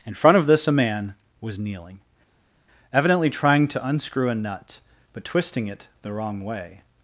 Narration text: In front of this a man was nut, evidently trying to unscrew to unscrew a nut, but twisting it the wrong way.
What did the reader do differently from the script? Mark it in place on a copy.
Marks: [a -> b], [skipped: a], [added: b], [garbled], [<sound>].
In front of this a man was [nut, -> kneeling] evidently trying to unscrew [skipped: to unscrew] a nut, but twisting it the wrong way.